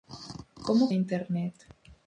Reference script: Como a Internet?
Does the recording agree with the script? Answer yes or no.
yes